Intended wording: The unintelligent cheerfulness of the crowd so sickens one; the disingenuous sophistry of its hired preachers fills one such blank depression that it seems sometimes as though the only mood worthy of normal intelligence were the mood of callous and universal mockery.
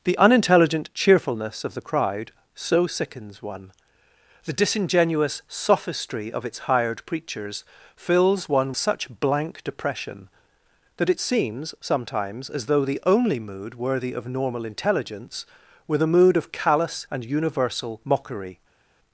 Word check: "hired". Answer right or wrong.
right